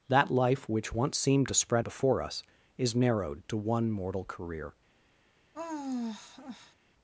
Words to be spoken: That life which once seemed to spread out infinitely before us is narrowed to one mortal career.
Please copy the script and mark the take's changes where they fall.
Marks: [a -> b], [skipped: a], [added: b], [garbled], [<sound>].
That life which once seemed to spread [skipped: out infinitely] before us is narrowed to one mortal career. [sigh]